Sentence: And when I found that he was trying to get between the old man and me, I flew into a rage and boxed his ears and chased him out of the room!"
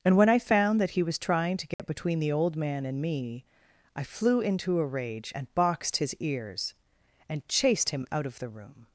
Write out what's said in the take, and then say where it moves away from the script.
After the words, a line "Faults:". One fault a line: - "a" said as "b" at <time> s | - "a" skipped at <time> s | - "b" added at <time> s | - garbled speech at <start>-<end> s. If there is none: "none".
And when I found that he was trying to get between the old man and me, I flew into a rage and boxed his ears and chased him out of the room!"
Faults:
none